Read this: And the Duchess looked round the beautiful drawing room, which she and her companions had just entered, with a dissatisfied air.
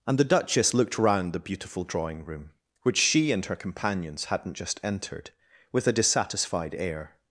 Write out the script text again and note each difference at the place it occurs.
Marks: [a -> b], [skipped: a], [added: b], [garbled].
And the Duchess looked round the beautiful drawing room, which she and her companions [had -> hadn't] just entered, with a dissatisfied air.